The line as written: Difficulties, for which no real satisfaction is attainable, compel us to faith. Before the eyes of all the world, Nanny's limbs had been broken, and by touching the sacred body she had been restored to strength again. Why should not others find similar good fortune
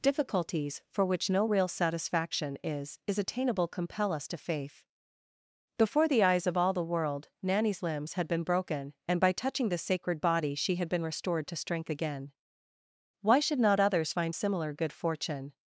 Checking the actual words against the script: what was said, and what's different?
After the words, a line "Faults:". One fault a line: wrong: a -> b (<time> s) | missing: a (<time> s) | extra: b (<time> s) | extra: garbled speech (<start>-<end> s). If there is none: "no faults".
Difficulties, for which no real satisfaction is is attainable, compel us to faith. Before the eyes of all the world, Nanny's limbs had been broken, and by touching the sacred body she had been restored to strength again. Why should not others find similar good fortune
Faults:
extra: is (3.1 s)